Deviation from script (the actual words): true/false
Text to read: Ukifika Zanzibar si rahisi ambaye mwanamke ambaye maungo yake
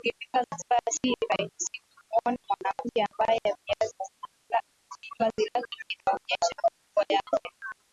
true